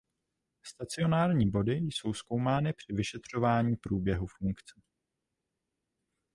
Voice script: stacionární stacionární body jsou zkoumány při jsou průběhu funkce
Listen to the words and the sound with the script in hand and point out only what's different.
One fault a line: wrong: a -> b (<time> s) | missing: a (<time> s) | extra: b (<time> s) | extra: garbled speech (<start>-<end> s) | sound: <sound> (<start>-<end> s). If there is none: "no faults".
missing: stacionární (1.5 s)
wrong: jsou -> vyšetřování (2.9 s)